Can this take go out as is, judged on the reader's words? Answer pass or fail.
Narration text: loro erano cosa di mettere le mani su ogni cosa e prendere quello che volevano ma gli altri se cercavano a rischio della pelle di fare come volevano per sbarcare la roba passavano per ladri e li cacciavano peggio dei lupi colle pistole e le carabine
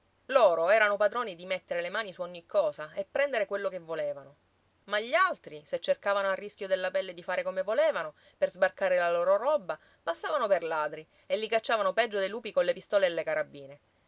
fail